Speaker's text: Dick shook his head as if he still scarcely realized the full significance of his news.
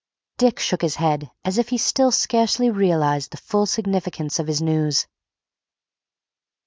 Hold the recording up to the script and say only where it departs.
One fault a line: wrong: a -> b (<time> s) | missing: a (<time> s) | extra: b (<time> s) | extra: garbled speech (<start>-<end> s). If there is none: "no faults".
no faults